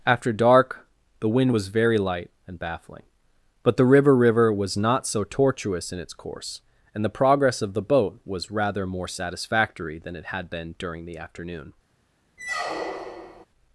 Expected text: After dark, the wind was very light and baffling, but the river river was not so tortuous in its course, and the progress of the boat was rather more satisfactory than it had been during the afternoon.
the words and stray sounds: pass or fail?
fail